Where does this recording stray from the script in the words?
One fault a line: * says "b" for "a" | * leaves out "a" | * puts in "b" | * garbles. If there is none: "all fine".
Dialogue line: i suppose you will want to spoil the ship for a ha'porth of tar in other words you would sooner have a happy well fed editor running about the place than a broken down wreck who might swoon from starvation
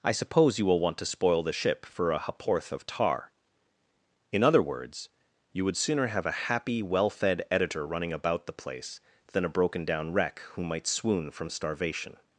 all fine